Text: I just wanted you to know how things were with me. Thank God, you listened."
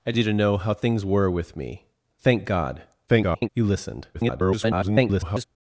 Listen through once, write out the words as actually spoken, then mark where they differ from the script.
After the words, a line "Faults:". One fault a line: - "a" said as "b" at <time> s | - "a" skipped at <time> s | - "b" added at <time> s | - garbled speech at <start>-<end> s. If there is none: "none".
I you to know how things were with me. Thank God, [garbled] you listened." [garbled]
Faults:
- "just wanted" skipped at 0.1 s
- garbled speech at 3.1-3.5 s
- garbled speech at 4.1-5.4 s